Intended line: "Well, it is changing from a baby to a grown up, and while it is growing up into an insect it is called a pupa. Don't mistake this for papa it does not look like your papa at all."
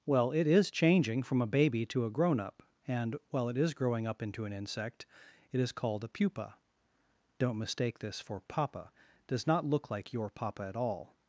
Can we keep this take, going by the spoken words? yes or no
no